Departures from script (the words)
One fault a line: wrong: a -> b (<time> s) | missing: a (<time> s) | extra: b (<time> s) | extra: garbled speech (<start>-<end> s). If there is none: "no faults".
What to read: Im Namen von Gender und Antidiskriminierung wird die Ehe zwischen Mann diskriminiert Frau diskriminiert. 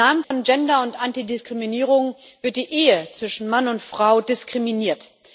wrong: diskriminiert -> und (3.7 s)